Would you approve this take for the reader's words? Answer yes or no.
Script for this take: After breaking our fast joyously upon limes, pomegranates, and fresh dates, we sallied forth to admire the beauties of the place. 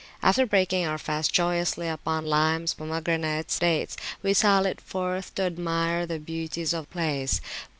no